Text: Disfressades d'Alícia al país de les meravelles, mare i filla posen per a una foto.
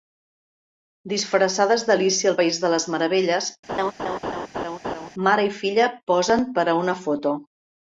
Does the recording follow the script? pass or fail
pass